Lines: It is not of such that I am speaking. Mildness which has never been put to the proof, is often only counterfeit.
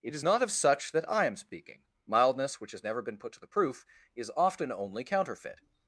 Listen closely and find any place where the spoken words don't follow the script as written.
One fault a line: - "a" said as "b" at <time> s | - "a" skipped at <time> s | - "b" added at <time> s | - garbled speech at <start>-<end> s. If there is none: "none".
none